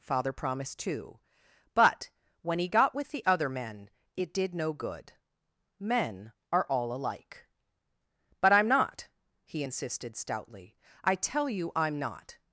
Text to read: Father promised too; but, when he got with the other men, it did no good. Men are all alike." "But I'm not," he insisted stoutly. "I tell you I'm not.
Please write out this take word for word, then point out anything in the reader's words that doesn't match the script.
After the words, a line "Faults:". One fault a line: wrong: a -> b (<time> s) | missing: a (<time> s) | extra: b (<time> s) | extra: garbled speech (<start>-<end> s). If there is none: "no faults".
Father promised too; but, when he got with the other men, it did no good. Men are all alike." "But I'm not," he insisted stoutly. "I tell you I'm not.
Faults:
no faults